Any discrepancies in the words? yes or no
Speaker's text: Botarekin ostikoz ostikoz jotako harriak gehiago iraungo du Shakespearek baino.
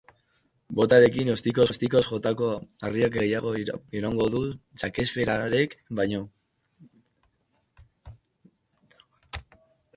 no